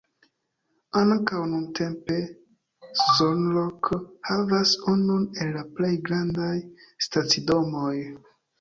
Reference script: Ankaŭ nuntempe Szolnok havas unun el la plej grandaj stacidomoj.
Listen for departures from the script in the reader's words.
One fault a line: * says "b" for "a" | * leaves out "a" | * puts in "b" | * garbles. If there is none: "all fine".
all fine